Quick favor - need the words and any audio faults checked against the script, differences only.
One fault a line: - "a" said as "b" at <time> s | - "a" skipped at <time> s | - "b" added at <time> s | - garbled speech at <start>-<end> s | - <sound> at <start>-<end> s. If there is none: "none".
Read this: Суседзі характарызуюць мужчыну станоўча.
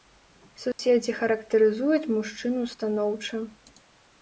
- dropout at 0.7-0.8 s